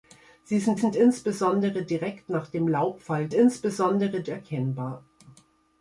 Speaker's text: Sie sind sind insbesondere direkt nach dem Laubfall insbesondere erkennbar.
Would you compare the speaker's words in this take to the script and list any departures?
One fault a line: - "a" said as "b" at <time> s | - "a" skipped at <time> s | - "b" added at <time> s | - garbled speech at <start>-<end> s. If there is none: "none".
none